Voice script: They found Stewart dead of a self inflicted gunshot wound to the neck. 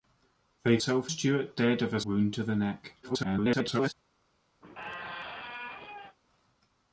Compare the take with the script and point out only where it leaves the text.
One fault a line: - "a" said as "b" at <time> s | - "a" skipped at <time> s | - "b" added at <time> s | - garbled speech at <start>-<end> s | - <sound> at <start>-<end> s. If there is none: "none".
- "found" said as "self" at 0.8 s
- "self inflicted gunshot" skipped at 2.0 s
- garbled speech at 3.0-3.9 s
- squeak at 4.6-6.2 s